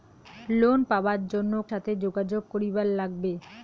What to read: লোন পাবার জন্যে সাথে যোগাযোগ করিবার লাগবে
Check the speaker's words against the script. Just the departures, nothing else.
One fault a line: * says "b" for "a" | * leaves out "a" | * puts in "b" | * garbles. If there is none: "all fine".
all fine